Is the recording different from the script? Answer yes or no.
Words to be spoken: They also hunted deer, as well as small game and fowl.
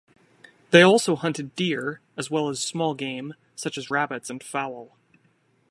yes